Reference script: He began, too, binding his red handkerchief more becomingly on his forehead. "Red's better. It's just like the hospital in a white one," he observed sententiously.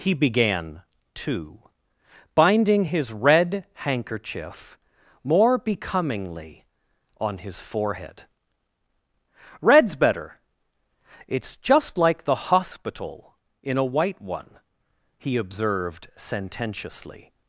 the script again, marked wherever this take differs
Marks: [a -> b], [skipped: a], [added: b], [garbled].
He began, too, binding his red handkerchief more becomingly on his forehead. "Red's better. It's just like the hospital in a white one," he observed sententiously.